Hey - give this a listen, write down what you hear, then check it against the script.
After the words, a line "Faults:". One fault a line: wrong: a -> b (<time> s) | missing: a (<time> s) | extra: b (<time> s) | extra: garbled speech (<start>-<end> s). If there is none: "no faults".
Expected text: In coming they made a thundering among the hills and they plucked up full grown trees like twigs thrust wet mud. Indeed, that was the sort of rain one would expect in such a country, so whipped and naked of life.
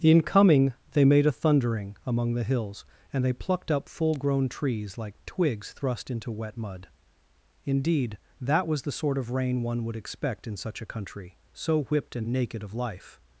In coming they made a thundering among the hills and they plucked up full grown trees like twigs thrust into wet mud. Indeed, that was the sort of rain one would expect in such a country, so whipped and naked of life.
Faults:
extra: into (6.1 s)